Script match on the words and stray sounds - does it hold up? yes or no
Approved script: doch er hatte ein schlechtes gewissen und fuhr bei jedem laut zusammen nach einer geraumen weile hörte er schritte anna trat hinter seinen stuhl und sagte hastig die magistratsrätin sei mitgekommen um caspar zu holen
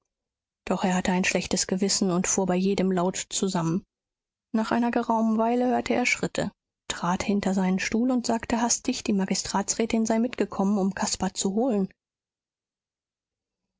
no